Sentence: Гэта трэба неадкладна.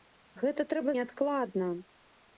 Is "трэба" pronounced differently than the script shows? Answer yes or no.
no